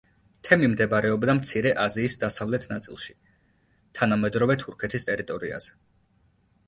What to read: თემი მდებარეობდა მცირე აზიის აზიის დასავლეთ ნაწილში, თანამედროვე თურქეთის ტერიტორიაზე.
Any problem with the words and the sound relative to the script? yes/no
yes